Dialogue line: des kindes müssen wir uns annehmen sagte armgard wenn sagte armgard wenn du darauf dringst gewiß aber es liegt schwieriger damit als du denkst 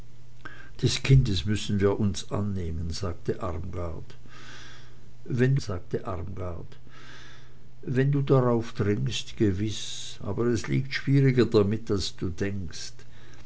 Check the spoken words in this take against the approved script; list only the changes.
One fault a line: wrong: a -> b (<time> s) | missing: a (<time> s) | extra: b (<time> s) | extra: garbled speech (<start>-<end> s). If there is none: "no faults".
no faults